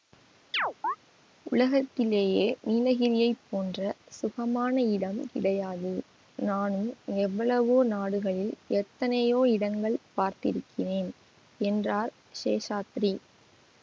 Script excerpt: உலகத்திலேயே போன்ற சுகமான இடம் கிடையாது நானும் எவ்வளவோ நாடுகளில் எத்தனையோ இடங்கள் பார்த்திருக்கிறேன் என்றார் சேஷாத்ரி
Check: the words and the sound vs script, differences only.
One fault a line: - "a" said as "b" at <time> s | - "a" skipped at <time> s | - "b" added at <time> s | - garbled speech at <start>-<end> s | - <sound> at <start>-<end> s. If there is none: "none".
- chirp at 0.5-1.0 s
- "நீலகிரியைப்" added at 2.7 s